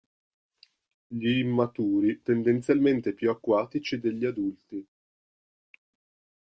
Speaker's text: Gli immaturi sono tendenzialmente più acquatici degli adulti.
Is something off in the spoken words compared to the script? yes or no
yes